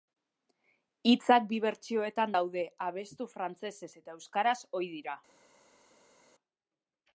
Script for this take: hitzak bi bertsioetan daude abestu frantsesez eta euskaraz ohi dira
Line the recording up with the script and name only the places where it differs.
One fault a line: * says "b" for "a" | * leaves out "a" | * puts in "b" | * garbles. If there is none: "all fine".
all fine